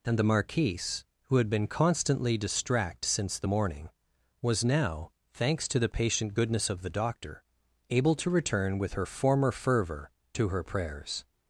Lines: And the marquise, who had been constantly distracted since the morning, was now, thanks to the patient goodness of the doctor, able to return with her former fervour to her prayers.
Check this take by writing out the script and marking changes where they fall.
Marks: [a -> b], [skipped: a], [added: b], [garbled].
And the marquise, who had been constantly [distracted -> distract] since the morning, was now, thanks to the patient goodness of the doctor, able to return with her former fervour to her prayers.